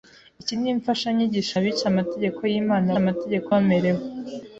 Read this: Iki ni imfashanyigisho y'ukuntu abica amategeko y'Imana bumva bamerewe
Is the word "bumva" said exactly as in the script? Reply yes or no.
no